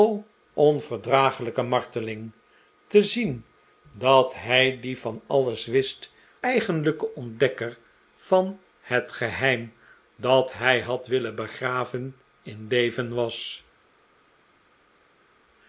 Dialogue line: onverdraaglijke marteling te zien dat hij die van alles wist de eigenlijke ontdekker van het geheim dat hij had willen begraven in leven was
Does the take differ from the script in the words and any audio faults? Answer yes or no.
yes